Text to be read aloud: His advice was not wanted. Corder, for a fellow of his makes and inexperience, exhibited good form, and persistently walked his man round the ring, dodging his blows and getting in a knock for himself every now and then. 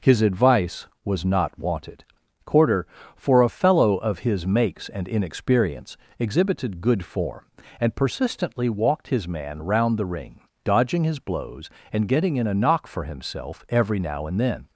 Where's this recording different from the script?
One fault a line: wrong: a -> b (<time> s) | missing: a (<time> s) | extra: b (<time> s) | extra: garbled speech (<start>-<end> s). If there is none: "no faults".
no faults